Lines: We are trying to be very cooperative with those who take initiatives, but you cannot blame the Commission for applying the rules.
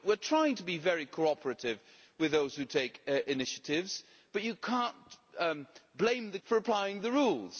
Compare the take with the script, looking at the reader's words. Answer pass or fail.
fail